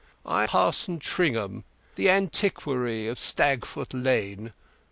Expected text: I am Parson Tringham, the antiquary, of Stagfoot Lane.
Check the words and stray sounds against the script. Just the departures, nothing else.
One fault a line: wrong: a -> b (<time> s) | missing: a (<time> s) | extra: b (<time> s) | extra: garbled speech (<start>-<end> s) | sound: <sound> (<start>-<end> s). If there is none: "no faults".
missing: am (0.5 s)